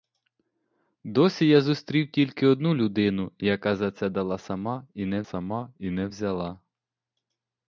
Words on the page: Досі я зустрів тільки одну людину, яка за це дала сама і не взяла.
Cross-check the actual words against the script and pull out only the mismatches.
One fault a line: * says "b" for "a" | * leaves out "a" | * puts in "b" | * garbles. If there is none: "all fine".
* puts in "сама і не"